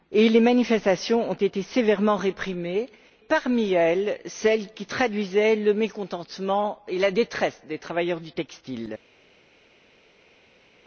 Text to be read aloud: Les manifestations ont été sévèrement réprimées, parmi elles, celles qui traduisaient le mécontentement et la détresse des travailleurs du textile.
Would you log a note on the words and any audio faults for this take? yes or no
no